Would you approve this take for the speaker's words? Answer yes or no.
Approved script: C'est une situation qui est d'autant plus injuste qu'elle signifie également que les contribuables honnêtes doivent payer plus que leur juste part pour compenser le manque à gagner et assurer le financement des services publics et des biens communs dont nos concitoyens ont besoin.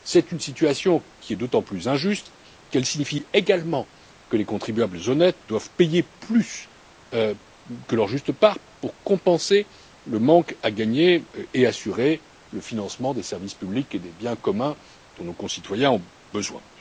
yes